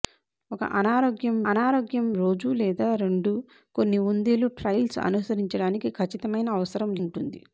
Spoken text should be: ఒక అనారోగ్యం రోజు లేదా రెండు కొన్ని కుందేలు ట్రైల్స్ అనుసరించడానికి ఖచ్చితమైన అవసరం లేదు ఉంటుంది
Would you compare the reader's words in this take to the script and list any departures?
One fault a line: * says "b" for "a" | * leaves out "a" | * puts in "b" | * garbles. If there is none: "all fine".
* puts in "అనారోగ్యం"
* leaves out "లేదు"